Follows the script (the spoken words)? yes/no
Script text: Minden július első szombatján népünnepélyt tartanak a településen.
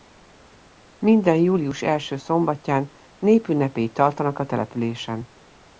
yes